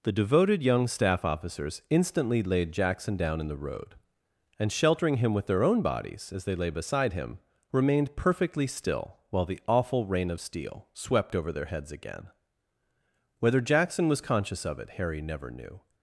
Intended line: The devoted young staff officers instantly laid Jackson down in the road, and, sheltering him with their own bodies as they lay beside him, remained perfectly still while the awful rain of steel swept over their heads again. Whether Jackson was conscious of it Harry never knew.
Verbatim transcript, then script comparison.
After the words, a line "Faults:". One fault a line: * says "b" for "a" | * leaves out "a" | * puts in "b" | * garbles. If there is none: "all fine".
The devoted young staff officers instantly laid Jackson down in the road, and, sheltering him with their own bodies as they lay beside him, remained perfectly still while the awful rain of steel swept over their heads again. Whether Jackson was conscious of it Harry never knew.
Faults:
all fine